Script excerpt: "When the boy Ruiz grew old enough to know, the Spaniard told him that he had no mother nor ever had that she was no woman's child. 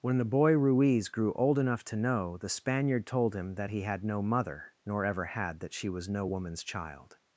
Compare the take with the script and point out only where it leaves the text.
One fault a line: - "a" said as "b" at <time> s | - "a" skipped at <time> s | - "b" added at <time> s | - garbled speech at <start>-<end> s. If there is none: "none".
none